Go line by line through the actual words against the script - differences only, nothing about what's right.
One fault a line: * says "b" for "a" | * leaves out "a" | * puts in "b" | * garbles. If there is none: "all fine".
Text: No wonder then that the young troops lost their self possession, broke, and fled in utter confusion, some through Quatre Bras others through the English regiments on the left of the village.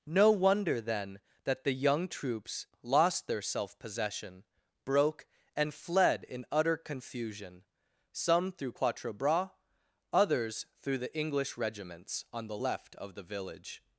all fine